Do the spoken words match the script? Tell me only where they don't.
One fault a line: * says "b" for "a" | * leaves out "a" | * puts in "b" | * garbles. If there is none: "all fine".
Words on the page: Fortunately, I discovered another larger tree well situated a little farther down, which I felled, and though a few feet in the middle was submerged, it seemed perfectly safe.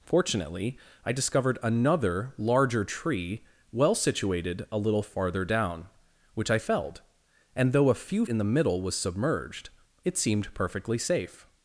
* leaves out "feet"